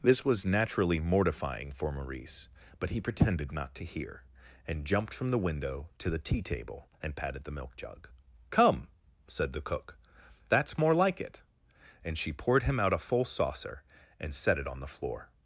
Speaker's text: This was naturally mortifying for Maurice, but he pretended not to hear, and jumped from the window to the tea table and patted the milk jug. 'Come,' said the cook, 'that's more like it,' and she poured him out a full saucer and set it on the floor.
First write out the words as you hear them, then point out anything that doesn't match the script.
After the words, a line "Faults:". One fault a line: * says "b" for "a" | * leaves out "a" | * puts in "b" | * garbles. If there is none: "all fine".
This was naturally mortifying for Maurice, but he pretended not to hear, and jumped from the window to the tea table and patted the milk jug. 'Come,' said the cook, 'that's more like it,' and she poured him out a full saucer and set it on the floor.
Faults:
all fine